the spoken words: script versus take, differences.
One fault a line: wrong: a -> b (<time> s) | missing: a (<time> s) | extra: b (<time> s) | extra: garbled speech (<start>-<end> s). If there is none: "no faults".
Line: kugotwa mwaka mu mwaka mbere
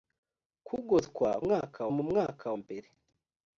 no faults